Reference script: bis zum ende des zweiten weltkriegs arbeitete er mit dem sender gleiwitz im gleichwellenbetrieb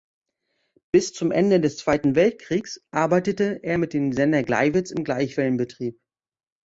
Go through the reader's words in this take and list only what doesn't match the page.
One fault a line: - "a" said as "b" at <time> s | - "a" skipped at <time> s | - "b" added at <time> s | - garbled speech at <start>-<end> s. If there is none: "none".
none